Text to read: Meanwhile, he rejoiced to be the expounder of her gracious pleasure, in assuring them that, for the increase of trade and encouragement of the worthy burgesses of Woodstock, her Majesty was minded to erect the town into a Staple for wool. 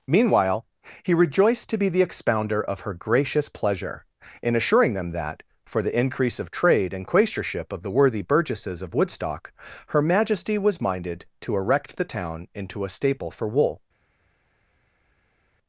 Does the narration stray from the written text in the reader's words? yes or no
yes